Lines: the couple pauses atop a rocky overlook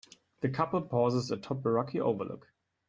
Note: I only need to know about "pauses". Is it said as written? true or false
true